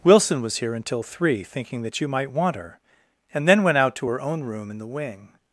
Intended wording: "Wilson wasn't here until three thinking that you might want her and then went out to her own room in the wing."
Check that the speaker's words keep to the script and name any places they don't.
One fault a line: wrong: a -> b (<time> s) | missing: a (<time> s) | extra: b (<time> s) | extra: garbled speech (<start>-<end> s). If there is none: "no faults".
wrong: wasn't -> was (0.4 s)